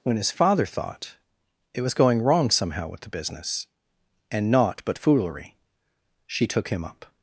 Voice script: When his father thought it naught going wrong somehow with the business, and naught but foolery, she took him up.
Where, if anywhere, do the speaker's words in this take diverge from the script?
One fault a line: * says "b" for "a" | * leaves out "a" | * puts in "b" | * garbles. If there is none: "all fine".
* says "was" for "naught"